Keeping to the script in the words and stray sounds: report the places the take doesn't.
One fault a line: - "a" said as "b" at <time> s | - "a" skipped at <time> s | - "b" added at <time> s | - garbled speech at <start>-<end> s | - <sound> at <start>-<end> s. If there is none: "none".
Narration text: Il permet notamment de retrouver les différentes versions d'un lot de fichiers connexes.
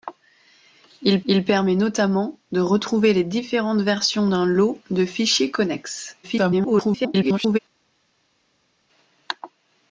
- "il" added at 1.3 s
- garbled speech at 6.2-7.6 s